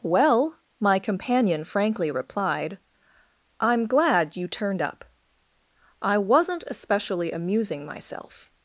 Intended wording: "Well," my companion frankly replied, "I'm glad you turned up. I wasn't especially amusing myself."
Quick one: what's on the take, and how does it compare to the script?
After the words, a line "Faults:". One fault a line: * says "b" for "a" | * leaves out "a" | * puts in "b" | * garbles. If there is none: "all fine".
"Well," my companion frankly replied, "I'm glad you turned up. I wasn't especially amusing myself."
Faults:
all fine